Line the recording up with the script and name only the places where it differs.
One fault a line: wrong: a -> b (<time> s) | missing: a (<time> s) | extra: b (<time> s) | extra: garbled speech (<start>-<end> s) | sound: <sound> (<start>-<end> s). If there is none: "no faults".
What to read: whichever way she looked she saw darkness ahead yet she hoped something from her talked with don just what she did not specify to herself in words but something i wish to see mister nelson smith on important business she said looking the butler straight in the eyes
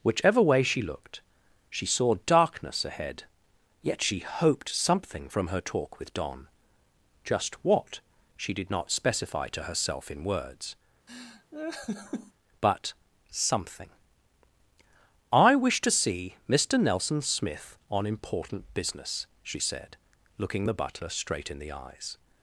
wrong: talked -> talk (5.6 s)
sound: laugh (11.1-12.3 s)